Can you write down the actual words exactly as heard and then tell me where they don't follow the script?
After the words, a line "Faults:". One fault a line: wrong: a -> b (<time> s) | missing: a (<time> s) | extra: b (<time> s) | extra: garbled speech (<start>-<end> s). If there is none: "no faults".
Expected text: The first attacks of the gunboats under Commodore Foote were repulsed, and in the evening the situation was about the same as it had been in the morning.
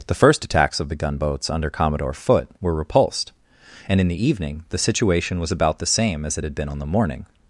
The first attacks of the gunboats under Commodore Foote were repulsed, and in the evening the situation was about the same as it had been on the morning.
Faults:
wrong: in -> on (6.7 s)